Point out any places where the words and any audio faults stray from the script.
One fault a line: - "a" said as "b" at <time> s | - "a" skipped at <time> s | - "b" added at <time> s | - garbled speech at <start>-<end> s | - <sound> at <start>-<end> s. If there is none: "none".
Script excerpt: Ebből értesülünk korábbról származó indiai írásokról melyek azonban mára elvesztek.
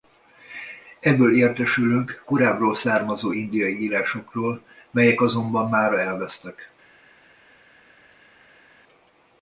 none